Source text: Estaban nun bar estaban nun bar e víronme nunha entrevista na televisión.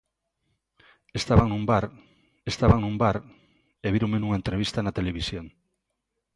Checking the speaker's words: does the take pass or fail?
pass